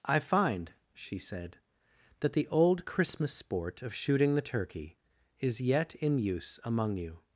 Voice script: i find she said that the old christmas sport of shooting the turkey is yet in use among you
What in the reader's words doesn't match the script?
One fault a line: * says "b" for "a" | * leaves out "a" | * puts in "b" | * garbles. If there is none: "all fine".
all fine